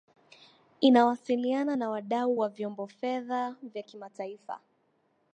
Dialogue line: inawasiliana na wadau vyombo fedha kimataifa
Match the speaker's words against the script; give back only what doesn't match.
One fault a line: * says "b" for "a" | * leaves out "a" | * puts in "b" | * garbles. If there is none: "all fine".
* puts in "wa"
* puts in "vya"